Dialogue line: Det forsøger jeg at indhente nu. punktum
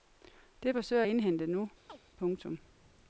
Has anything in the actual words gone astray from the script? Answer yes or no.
yes